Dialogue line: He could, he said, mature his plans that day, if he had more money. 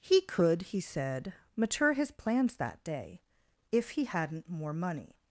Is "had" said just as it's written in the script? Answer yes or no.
no